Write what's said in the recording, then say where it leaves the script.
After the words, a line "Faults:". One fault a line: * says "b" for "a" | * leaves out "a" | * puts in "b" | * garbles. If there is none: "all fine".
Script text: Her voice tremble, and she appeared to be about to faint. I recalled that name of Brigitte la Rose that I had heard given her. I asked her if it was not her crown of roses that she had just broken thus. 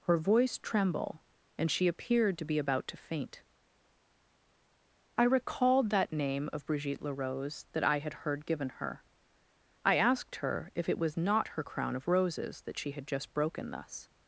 Her voice tremble, and she appeared to be about to faint. I recalled that name of Brigitte la Rose that I had heard given her. I asked her if it was not her crown of roses that she had just broken thus.
Faults:
all fine